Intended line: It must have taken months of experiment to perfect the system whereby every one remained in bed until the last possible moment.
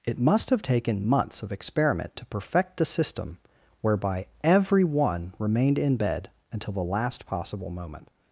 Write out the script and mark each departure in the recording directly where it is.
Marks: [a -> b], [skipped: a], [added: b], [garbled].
It must have taken months of experiment to perfect the system whereby every one remained in bed until the last possible moment.